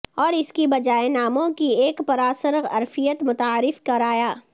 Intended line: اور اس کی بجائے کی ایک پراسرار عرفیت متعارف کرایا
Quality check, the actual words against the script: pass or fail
fail